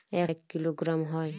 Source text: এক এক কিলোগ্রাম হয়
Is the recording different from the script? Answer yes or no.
no